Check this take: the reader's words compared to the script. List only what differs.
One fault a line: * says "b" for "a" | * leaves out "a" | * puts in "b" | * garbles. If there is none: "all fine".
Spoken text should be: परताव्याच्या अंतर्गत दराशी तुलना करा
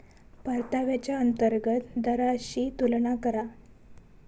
all fine